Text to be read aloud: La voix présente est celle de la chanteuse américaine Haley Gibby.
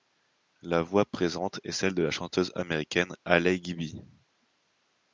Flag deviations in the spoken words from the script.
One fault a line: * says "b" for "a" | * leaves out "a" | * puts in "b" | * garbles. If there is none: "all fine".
all fine